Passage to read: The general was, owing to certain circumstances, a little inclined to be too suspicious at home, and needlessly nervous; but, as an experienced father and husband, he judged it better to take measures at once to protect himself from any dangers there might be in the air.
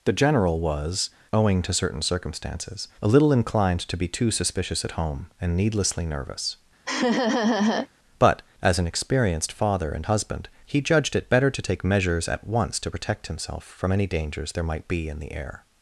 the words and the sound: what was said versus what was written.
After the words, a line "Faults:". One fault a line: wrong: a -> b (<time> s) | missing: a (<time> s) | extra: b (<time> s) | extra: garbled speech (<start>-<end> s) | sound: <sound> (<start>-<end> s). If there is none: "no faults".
The general was, owing to certain circumstances, a little inclined to be too suspicious at home, and needlessly nervous; but, as an experienced father and husband, he judged it better to take measures at once to protect himself from any dangers there might be in the air.
Faults:
sound: laugh (6.9-7.9 s)